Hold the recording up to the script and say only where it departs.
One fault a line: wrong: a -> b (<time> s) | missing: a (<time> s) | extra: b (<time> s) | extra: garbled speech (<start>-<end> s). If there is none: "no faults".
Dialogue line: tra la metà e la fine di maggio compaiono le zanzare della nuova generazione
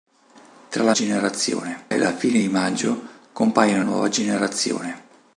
wrong: metà -> generazione (0.9 s)
missing: le zanzare della (3.8 s)